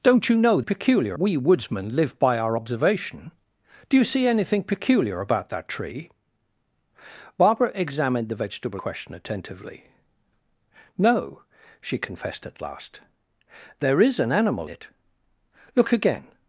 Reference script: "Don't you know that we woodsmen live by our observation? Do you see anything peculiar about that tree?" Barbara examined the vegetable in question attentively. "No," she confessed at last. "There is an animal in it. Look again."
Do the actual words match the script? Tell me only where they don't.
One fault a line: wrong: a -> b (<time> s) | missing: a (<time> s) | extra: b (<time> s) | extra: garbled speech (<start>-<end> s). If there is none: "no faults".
wrong: that -> peculiar (0.6 s)
missing: in (8.8 s)
missing: in (14.7 s)